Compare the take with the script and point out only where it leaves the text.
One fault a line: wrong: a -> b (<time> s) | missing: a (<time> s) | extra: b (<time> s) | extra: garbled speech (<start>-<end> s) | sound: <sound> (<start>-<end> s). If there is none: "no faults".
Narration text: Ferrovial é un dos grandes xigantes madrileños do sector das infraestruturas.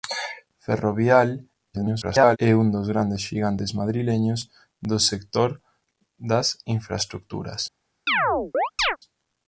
extra: garbled speech (1.7-2.4 s)
sound: chirp (8.1-9.0 s)